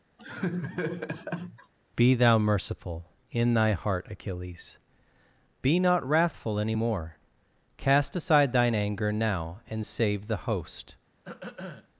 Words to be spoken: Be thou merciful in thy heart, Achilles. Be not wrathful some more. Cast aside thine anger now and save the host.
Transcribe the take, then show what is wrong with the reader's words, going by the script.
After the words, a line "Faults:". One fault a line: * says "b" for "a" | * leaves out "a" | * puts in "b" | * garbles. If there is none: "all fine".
Be thou merciful in thy heart, Achilles. Be not wrathful any more. Cast aside thine anger now and save the host.
Faults:
* says "any" for "some"